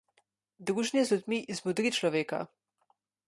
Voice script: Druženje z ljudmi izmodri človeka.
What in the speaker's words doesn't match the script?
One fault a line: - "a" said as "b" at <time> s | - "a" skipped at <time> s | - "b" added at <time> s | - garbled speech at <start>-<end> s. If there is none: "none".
none